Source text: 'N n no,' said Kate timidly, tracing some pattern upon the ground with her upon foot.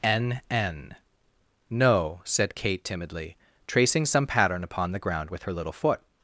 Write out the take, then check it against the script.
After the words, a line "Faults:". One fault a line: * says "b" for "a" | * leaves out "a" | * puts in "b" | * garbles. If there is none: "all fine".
'N n no,' said Kate timidly, tracing some pattern upon the ground with her little foot.
Faults:
* says "little" for "upon"